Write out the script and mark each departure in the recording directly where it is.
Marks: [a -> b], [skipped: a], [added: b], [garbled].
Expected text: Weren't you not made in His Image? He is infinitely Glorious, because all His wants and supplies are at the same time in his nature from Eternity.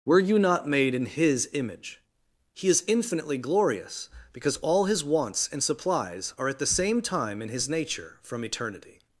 [Weren't -> Were] you not made in His Image? He is infinitely Glorious, because all His wants and supplies are at the same time in his nature from Eternity.